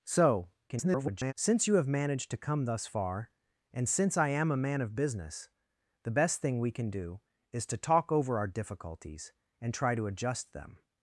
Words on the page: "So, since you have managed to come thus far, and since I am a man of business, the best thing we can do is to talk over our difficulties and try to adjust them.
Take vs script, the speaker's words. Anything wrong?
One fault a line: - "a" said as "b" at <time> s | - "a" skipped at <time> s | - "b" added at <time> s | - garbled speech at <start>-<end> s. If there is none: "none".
- garbled speech at 0.7-1.3 s